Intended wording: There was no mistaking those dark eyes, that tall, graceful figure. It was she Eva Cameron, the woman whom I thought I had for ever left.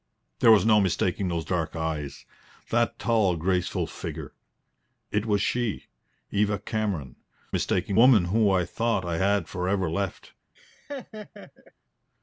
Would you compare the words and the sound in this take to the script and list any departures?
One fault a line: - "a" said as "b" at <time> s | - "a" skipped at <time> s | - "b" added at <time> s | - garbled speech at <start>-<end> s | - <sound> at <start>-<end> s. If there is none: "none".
- "the" said as "mistaking" at 7.5 s
- laugh at 10.5-11.7 s